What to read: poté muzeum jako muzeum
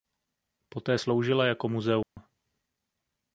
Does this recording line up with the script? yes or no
no